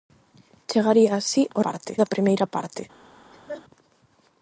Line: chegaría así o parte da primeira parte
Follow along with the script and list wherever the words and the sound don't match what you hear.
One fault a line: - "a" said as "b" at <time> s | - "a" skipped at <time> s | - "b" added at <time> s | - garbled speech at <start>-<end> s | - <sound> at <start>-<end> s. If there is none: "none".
- laugh at 3.3-3.6 s